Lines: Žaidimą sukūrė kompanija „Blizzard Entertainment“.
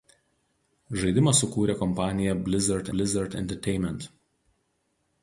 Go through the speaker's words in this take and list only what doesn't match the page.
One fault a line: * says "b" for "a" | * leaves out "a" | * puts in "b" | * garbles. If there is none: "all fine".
* puts in "blizzard"